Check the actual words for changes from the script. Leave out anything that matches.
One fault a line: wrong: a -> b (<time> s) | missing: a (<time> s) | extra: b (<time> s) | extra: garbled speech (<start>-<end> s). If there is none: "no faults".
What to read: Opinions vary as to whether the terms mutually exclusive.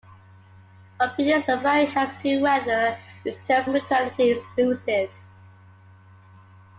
no faults